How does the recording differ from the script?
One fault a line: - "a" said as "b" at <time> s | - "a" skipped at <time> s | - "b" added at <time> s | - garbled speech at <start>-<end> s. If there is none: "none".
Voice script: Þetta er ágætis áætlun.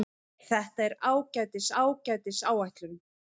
- "ágætis" added at 1.8 s